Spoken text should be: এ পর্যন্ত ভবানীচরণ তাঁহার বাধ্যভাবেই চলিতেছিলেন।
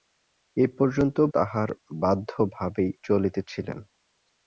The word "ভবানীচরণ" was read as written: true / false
false